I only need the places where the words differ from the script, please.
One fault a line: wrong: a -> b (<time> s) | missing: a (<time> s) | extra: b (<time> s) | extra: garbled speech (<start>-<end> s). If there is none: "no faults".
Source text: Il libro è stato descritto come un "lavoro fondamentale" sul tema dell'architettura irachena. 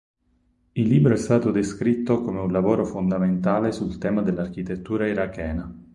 no faults